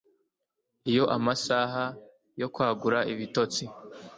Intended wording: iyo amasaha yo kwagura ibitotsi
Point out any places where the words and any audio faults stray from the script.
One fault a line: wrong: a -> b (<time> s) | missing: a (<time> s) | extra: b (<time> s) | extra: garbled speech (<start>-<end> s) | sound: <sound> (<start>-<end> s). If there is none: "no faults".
no faults